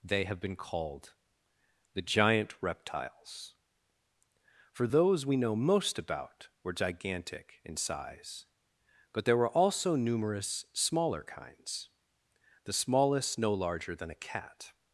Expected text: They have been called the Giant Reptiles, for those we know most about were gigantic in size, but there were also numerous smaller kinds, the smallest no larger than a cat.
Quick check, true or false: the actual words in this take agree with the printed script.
true